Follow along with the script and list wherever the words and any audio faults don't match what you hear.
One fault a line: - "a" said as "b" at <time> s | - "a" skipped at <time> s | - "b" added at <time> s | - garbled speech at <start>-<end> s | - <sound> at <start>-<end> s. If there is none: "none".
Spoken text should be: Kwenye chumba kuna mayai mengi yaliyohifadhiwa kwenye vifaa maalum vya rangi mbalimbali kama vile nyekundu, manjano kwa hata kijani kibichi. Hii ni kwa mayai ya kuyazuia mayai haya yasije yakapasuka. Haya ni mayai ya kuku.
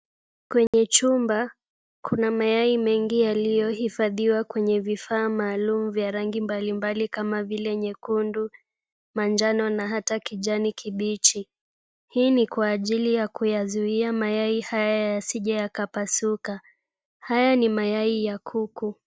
- dropout at 0.7-0.7 s
- "kwa" said as "na" at 9.7 s
- "mayai" said as "ajili" at 12.7 s